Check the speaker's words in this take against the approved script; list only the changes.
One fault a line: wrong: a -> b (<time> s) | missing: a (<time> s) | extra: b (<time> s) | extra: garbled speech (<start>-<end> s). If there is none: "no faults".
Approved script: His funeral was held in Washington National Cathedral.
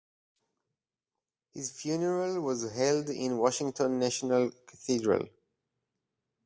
no faults